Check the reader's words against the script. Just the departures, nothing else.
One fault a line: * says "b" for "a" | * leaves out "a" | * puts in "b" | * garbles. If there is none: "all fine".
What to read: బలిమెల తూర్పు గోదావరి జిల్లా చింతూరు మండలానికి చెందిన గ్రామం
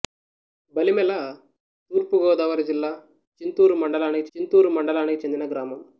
* puts in "చింతూరు మండలానికి"